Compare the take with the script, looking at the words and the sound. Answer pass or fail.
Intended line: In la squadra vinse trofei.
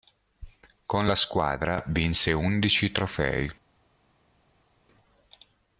fail